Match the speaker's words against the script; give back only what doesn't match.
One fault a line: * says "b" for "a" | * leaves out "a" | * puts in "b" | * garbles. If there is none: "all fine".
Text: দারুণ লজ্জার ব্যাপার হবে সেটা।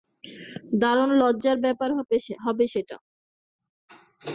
all fine